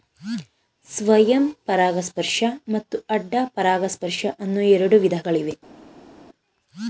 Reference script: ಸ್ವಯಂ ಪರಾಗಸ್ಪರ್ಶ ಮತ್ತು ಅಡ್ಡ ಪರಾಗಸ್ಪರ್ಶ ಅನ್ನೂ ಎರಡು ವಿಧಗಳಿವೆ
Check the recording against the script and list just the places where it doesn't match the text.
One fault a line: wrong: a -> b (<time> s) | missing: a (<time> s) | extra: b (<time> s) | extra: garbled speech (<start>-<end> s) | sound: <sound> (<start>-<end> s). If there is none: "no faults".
no faults